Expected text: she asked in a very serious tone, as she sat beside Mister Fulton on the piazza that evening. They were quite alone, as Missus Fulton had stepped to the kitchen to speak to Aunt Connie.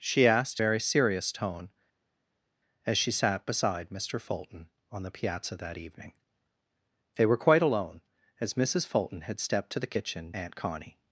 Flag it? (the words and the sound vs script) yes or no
yes